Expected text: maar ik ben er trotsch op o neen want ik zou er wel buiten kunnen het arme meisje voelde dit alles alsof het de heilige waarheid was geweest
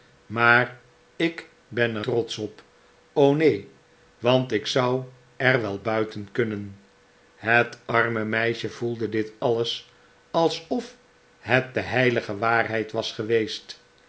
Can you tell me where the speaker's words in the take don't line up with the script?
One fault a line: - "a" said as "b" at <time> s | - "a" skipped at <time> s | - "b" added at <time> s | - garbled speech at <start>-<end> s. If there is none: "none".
none